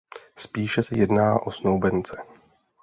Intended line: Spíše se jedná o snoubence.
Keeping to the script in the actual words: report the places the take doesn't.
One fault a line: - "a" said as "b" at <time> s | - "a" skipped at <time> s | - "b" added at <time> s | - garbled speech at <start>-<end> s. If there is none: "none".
none